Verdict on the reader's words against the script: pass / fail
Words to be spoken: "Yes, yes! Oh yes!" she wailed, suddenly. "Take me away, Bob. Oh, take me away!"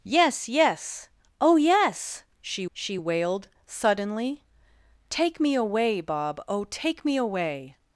fail